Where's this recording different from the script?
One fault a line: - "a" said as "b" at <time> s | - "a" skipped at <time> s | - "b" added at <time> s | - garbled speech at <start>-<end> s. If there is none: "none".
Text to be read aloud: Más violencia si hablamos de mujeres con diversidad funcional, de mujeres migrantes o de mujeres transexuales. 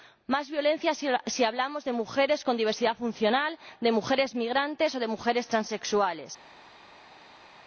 none